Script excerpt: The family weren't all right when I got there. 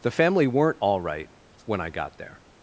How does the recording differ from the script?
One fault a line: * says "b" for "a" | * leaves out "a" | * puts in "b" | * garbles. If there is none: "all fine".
all fine